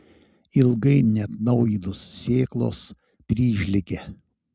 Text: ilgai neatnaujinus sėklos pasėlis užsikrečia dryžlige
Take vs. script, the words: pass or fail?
fail